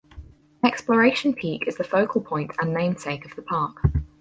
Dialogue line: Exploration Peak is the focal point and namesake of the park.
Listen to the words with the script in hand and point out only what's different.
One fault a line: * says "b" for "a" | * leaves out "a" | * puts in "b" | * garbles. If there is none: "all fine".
all fine